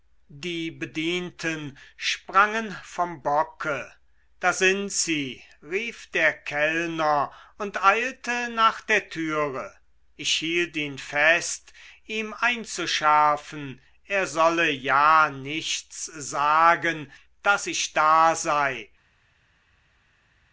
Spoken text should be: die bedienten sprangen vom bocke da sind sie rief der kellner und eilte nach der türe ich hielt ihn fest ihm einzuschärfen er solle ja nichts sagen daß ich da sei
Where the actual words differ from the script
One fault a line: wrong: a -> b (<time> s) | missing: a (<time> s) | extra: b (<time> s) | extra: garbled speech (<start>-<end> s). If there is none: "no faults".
no faults